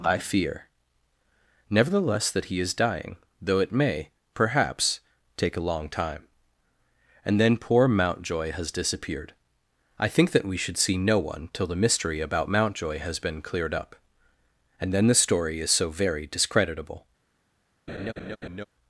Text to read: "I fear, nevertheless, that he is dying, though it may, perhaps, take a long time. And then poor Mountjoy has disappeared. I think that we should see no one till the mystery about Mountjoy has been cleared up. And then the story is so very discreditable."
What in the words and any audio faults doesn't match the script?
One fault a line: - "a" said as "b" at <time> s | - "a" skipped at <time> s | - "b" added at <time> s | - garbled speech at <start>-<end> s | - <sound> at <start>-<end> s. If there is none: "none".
- laugh at 17.9-18.7 s